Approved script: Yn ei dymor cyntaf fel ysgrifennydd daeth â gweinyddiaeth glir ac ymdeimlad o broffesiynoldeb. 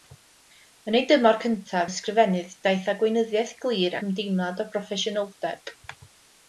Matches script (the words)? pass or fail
fail